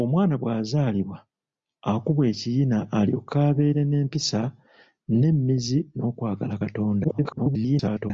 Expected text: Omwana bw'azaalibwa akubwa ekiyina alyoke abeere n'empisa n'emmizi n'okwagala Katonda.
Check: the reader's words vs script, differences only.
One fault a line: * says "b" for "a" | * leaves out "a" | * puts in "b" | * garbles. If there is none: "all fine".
* garbles